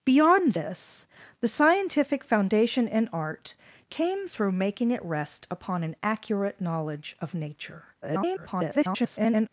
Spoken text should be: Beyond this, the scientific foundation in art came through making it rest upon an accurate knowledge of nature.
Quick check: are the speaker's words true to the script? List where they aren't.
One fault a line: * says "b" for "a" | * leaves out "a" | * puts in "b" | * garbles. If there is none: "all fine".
* garbles